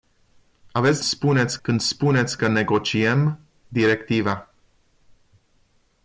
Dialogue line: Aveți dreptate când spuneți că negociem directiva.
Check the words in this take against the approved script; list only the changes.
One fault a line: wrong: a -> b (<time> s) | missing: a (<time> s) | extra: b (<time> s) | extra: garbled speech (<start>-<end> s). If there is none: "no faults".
wrong: dreptate -> spuneți (1.0 s)